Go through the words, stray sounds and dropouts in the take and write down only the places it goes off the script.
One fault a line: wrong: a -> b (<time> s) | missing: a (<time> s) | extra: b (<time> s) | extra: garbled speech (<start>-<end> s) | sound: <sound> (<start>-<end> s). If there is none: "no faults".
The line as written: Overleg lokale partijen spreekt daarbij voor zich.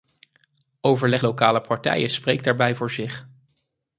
no faults